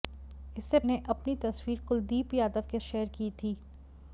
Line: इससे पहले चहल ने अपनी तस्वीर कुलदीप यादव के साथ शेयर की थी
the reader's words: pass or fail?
fail